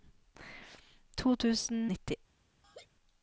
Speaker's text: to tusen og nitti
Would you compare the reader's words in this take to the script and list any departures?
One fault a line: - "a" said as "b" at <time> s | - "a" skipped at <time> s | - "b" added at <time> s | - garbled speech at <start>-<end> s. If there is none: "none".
none